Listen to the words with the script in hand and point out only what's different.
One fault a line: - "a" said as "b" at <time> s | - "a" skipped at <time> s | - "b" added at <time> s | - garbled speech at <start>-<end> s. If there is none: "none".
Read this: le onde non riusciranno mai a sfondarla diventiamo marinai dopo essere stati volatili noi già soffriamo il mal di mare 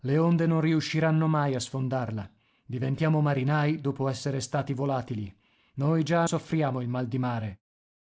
none